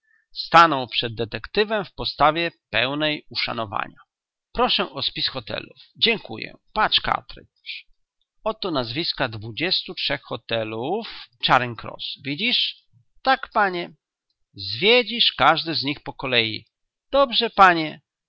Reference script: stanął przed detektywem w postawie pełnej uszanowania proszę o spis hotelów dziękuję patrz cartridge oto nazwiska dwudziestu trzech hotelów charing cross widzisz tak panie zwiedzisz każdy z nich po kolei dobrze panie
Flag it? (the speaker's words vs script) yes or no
no